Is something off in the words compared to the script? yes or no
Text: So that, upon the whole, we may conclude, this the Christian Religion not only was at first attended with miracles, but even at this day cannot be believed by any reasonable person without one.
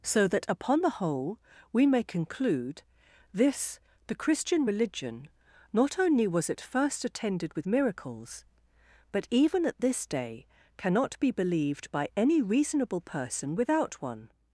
no